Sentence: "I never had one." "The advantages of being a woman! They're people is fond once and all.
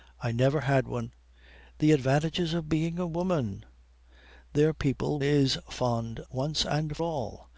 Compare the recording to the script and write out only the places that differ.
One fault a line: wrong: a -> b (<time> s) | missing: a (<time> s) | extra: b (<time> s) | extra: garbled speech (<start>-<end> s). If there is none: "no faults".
no faults